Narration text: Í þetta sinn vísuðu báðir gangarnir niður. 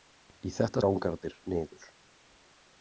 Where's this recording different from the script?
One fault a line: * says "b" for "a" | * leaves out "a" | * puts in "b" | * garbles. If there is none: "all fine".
* leaves out "sinn vísuðu báðir"